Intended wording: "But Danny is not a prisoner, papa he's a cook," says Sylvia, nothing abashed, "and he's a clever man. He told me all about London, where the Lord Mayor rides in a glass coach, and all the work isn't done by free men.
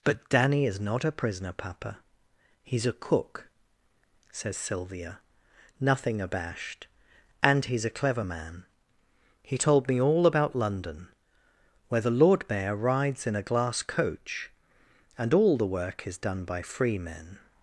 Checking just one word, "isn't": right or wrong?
wrong